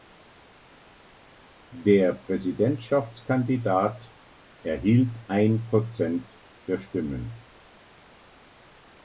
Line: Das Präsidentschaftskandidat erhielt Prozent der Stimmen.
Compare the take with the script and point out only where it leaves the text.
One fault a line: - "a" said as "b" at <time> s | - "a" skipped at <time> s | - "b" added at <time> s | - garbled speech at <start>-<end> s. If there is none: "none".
- "Das" said as "Der" at 1.7 s
- "ein" added at 5.3 s